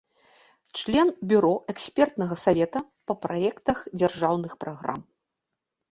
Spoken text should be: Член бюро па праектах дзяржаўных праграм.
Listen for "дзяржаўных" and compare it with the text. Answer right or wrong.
right